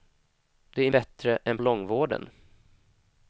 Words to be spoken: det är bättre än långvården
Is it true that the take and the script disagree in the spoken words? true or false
false